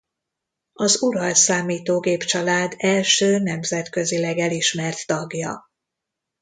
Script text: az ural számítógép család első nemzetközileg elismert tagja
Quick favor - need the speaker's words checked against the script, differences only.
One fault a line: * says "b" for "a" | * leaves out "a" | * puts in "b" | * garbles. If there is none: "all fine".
all fine